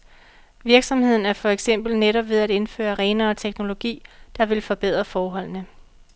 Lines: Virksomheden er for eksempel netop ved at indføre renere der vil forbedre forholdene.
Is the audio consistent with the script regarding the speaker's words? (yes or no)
no